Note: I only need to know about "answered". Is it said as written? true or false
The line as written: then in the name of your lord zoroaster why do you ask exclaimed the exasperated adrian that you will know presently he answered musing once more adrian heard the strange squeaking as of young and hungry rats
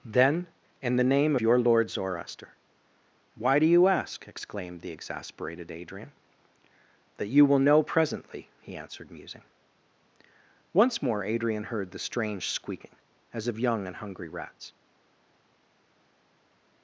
true